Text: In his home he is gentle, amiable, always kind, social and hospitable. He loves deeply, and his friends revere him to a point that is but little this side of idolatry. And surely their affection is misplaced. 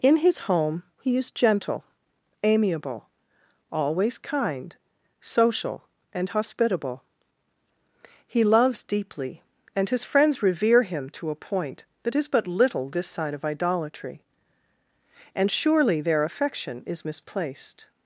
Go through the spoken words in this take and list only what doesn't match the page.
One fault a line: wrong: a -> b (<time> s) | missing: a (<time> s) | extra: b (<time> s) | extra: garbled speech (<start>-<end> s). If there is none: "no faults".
no faults